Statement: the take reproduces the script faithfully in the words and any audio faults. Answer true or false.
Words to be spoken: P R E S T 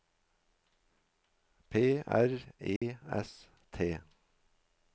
false